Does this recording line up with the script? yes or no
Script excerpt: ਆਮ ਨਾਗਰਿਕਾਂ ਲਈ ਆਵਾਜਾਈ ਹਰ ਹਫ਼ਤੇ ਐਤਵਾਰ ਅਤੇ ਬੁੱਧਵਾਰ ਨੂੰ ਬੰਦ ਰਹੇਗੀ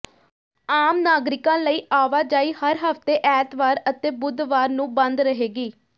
yes